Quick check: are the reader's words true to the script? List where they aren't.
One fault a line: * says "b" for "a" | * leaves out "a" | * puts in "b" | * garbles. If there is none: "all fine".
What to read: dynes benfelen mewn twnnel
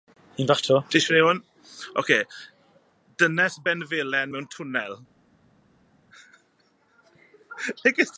all fine